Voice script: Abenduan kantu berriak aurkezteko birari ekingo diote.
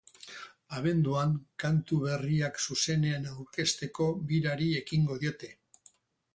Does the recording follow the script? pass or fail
fail